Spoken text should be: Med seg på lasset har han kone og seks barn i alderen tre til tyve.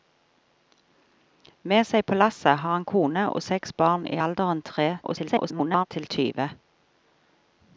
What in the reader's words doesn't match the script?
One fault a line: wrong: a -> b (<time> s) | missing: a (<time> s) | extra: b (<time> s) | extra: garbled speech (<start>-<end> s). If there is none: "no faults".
extra: garbled speech (5.0-5.9 s)